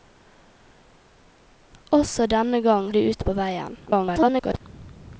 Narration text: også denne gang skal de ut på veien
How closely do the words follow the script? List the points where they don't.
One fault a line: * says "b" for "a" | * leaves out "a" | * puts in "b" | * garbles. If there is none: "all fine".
* leaves out "skal"
* garbles